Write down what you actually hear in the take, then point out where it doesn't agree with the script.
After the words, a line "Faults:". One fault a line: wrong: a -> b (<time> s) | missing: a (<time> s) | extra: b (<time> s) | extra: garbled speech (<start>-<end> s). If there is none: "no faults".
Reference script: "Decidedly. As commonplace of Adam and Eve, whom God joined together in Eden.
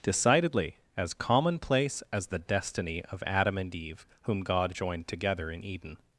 "Decidedly. As commonplace as the destiny of Adam and Eve, whom God joined together in Eden.
Faults:
extra: as the destiny (2.1 s)